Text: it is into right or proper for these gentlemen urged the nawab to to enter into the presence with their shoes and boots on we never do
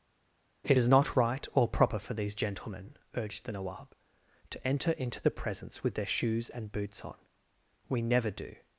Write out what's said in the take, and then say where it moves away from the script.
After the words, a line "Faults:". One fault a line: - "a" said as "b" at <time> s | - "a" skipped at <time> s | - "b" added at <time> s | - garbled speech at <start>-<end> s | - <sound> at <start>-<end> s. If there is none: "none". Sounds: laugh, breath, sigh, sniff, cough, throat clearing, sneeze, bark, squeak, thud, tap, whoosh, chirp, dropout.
it is not right or proper for these gentlemen urged the nawab to enter into the presence with their shoes and boots on we never do
Faults:
- "into" said as "not" at 0.9 s
- "to" skipped at 4.7 s